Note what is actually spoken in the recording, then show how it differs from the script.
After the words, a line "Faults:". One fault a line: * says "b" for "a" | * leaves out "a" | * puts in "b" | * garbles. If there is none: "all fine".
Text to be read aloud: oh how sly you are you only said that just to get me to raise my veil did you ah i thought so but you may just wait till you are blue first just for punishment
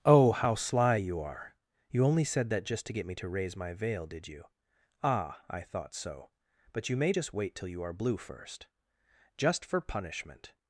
oh how sly you are you only said that just to get me to raise my veil did you ah i thought so but you may just wait till you are blue first just for punishment
Faults:
all fine